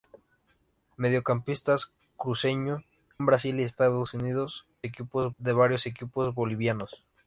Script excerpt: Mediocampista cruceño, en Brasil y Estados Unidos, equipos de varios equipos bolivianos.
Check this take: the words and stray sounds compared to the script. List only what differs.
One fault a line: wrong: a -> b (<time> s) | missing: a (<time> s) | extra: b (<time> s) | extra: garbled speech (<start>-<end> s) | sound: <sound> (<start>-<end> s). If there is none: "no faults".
no faults